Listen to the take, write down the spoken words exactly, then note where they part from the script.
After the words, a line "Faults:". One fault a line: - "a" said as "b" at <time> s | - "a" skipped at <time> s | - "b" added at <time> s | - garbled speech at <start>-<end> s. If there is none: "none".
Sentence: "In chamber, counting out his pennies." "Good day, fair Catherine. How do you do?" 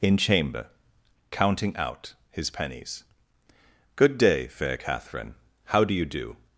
"In chamber, counting out his pennies." "Good day, fair Catherine. How do you do?"
Faults:
none